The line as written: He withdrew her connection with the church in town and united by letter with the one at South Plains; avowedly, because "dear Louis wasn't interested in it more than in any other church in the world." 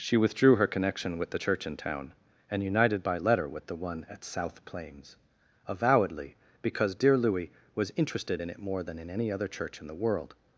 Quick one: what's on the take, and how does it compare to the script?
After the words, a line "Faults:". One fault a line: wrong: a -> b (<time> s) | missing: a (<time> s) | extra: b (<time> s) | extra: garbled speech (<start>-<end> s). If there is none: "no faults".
She withdrew her connection with the church in town and united by letter with the one at South Plains; avowedly, because "dear Louis was interested in it more than in any other church in the world."
Faults:
wrong: He -> She (0.0 s)
wrong: wasn't -> was (7.7 s)